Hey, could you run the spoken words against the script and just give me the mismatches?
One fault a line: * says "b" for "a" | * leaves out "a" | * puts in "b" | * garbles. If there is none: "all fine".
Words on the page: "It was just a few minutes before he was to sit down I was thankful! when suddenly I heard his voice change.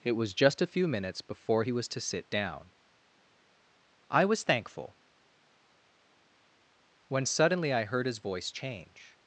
all fine